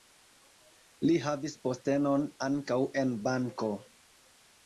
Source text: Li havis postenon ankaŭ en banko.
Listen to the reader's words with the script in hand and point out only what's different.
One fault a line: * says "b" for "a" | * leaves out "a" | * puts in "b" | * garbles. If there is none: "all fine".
all fine